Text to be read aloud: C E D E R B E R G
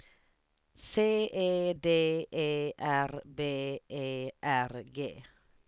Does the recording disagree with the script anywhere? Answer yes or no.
no